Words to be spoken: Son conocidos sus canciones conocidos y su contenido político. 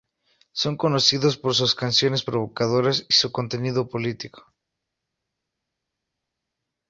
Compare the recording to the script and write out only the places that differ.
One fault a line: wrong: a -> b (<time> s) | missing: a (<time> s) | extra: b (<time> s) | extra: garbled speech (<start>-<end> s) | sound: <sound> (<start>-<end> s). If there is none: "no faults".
extra: por (1.4 s)
wrong: conocidos -> provocadoras (2.2 s)